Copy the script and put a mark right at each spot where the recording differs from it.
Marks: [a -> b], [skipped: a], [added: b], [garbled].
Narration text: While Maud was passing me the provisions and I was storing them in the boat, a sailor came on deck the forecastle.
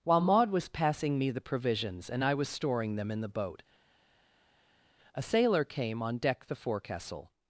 While Maud was passing me the provisions and I was storing them in the boat, a sailor came on deck the forecastle.